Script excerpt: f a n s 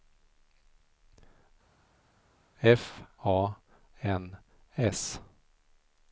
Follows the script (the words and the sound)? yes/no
yes